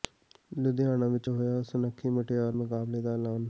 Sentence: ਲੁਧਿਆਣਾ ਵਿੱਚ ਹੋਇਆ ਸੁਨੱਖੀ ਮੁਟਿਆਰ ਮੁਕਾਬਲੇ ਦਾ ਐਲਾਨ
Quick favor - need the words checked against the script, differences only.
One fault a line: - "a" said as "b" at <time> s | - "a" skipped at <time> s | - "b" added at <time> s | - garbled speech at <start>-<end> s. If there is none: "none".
none